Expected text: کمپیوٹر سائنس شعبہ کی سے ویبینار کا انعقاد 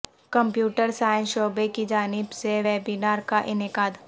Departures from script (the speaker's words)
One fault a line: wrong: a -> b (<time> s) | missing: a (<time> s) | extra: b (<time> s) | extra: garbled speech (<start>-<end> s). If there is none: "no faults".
extra: جانب (1.9 s)